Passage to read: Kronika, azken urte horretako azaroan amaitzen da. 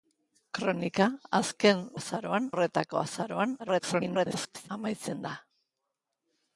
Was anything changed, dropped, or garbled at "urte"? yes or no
yes